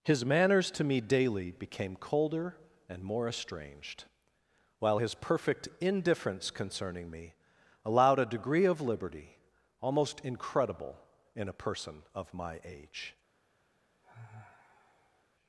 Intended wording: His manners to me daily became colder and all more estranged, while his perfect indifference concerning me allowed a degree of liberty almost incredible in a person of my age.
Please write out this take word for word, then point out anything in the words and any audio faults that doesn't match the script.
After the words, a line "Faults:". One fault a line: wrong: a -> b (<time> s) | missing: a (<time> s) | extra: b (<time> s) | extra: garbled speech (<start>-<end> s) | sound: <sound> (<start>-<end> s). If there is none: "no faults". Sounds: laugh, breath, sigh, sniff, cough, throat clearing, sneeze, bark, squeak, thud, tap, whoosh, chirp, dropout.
His manners to me daily became colder and more estranged, while his perfect indifference concerning me allowed a degree of liberty almost incredible in a person of my age.
Faults:
missing: all (3.0 s)
sound: sigh (14.0-15.2 s)